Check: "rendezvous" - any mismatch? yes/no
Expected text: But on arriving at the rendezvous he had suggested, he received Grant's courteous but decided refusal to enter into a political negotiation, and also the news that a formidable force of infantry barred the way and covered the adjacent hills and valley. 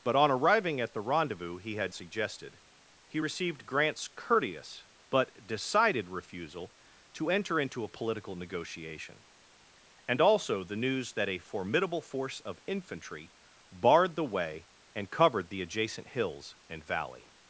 no